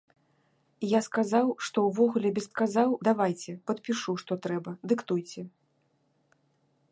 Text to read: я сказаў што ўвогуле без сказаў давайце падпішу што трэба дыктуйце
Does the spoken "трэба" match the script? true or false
true